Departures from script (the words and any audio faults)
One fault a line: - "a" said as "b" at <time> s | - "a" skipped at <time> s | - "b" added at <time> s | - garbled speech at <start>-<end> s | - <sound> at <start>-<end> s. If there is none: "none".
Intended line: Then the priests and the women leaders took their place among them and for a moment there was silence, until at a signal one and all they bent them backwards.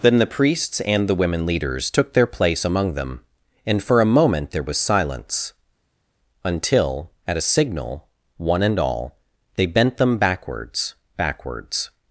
- "backwards" added at 11.2 s